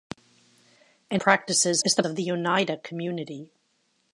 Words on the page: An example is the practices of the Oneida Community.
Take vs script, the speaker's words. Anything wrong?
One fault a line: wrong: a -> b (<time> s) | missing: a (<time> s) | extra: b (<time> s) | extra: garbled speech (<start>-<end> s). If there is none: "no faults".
wrong: example -> practices (1.1 s)
missing: practices (2.0 s)